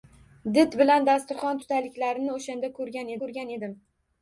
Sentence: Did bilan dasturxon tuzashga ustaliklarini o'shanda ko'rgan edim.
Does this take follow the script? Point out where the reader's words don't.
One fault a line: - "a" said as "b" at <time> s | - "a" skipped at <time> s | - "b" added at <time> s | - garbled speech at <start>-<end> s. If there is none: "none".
- "tuzashga" skipped at 1.6 s
- "ko'rgan" added at 3.2 s